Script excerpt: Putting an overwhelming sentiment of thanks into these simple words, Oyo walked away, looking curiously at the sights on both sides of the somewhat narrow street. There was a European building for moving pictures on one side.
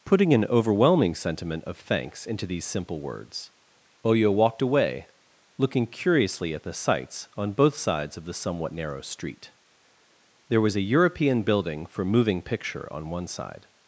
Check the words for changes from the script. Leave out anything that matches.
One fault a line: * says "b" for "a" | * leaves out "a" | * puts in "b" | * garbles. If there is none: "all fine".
* says "picture" for "pictures"